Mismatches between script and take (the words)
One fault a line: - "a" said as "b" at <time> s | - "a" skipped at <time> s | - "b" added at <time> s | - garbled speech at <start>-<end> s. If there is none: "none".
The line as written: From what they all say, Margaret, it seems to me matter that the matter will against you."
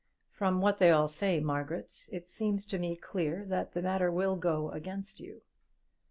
- "matter" said as "clear" at 3.0 s
- "go" added at 4.3 s